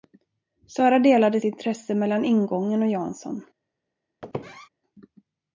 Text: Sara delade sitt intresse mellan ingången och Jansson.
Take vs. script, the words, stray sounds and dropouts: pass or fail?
fail